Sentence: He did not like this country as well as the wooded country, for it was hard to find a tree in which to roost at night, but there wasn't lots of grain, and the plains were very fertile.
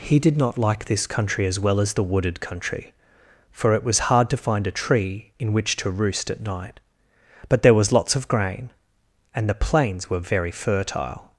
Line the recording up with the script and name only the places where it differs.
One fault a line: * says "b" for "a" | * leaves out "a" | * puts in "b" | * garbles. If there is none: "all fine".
* says "was" for "wasn't"